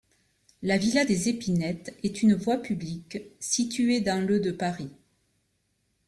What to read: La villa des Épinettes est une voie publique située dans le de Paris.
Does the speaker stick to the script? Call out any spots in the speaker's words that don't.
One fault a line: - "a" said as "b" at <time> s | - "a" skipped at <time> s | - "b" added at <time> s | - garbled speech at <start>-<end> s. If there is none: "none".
none